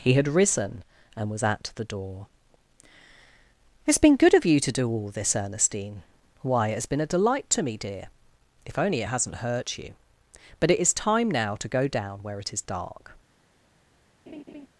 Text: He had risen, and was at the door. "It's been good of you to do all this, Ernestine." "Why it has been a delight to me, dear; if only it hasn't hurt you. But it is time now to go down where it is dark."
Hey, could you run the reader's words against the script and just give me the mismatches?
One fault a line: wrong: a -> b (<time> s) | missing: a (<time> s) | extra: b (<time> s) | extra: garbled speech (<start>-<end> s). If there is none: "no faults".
no faults